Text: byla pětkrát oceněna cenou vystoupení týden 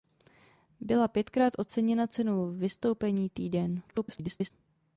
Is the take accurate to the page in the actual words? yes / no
no